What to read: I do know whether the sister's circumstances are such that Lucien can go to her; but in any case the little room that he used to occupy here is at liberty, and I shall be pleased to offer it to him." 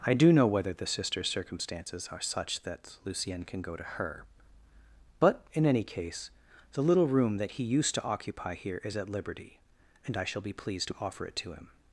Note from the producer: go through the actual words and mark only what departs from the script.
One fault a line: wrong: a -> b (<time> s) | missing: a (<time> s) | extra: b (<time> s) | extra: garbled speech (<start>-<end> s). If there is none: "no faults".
no faults